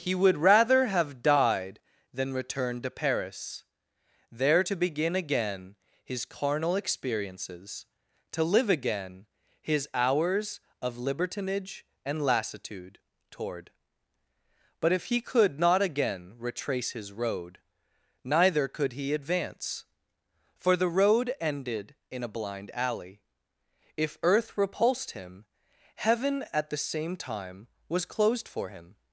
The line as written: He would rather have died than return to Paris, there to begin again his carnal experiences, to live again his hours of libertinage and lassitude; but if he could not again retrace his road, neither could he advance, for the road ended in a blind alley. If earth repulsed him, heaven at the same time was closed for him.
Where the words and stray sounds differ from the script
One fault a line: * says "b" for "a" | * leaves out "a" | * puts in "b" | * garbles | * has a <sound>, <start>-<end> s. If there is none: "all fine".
* puts in "toward"